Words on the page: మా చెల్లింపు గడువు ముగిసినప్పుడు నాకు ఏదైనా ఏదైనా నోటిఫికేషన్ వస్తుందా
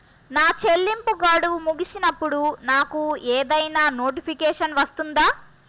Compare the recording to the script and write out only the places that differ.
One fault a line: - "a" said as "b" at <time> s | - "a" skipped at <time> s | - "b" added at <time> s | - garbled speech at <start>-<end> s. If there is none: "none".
- "మా" said as "నా" at 0.3 s
- "ఏదైనా" skipped at 3.8 s